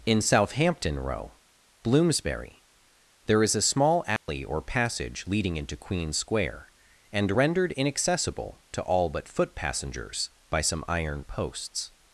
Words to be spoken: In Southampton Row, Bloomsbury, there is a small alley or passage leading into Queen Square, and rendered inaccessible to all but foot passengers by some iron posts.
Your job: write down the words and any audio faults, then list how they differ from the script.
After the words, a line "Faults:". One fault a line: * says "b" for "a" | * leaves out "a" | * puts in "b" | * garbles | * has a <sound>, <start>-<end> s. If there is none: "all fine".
In Southampton Row, Bloomsbury, there is a small alley or passage leading into Queen Square, and rendered inaccessible to all but foot passengers by some iron posts.
Faults:
* has a dropout, 4.2-4.3 s